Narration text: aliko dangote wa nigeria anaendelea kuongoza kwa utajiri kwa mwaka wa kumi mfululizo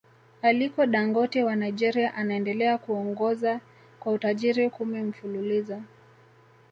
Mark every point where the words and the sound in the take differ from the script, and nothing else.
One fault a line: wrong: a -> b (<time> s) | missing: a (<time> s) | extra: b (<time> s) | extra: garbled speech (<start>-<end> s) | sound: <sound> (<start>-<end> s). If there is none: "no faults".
missing: kwa mwaka wa (4.7 s)